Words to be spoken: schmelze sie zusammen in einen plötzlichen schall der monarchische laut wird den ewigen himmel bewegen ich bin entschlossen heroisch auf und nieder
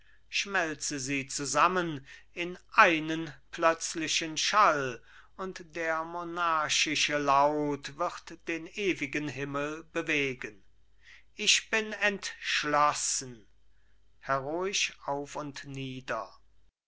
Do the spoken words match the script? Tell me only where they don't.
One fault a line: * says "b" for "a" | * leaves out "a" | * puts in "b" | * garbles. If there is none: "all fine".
* puts in "und"